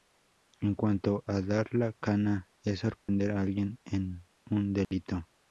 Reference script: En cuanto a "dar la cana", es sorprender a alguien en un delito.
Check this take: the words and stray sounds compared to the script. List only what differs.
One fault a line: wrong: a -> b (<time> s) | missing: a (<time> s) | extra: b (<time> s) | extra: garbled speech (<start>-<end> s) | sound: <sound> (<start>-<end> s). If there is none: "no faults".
sound: dropout (3.0-3.1 s)
sound: dropout (4.8-4.9 s)